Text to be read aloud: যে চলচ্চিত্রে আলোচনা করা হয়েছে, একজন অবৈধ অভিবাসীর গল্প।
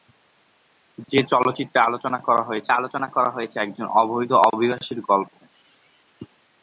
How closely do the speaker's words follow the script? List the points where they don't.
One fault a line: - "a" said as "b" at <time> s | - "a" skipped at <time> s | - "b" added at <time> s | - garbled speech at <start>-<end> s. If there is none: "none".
- "আলোচনা করা হয়েছে" added at 2.7 s